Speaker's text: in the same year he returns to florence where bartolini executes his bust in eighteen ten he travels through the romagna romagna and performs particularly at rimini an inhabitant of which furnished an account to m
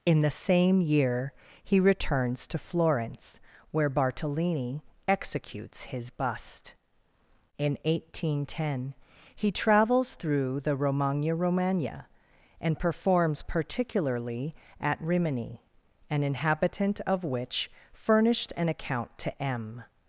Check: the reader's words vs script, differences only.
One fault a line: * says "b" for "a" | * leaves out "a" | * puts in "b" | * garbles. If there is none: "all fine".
all fine